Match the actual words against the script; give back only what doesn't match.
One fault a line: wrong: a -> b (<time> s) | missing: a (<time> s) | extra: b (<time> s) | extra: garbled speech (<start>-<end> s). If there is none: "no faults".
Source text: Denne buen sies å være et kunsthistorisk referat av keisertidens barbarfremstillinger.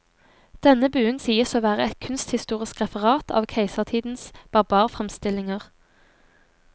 no faults